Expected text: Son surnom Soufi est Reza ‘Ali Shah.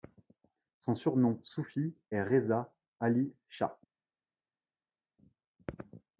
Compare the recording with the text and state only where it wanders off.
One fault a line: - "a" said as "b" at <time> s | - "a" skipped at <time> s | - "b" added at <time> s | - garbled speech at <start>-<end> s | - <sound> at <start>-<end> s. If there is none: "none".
none